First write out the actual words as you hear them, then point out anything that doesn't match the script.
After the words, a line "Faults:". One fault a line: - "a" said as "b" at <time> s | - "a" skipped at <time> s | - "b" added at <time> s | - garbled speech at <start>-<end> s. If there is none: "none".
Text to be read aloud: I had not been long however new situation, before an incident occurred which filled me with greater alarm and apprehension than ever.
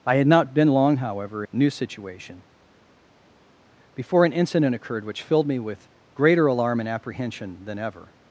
I had not been long however new situation, before an incident occurred which filled me with greater alarm and apprehension than ever.
Faults:
none